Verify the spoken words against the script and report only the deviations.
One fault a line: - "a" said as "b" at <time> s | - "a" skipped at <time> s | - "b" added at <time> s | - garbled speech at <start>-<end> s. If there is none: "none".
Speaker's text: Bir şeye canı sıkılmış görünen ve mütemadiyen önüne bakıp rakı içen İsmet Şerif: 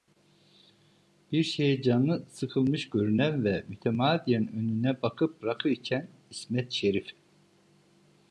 none